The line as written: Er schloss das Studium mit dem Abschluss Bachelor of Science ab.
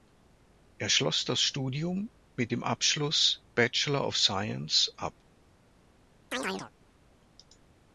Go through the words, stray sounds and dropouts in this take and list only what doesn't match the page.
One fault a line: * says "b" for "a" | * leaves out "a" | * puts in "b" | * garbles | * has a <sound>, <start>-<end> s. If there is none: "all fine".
* has a chirp, 6.3-6.7 s